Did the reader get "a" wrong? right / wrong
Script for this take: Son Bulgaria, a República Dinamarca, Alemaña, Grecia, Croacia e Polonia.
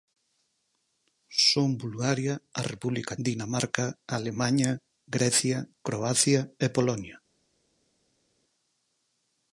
right